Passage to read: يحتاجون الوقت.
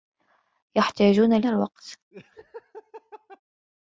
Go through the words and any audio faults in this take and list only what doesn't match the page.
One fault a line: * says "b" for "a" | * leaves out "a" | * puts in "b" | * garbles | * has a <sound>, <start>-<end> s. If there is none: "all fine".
* has a laugh, 2.1-3.4 s